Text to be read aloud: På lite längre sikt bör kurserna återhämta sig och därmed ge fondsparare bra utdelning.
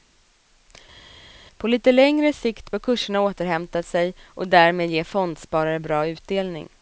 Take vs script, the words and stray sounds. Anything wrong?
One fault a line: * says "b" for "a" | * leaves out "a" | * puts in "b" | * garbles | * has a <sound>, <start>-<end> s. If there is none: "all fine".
all fine